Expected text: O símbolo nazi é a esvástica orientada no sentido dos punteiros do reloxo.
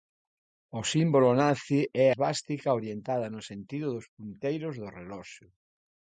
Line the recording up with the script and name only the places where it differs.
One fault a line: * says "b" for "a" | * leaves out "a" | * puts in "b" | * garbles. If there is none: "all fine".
* leaves out "a"